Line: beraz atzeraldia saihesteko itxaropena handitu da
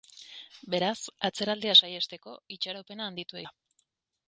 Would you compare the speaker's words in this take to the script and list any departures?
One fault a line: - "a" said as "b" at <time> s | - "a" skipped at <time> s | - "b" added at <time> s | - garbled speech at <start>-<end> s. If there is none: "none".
none